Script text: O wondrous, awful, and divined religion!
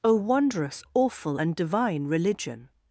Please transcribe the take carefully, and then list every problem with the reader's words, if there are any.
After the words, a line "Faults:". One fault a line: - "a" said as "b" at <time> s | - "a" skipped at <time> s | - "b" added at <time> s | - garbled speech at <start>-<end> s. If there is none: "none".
O wondrous, awful, and divine religion!
Faults:
- "divined" said as "divine" at 1.5 s